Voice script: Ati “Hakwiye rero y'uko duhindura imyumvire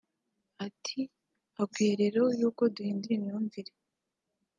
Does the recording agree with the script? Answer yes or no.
yes